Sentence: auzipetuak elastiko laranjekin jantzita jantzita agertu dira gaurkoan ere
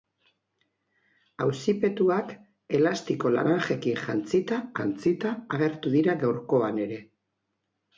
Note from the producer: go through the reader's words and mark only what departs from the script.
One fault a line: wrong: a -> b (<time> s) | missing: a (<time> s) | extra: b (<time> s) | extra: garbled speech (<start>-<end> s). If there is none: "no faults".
no faults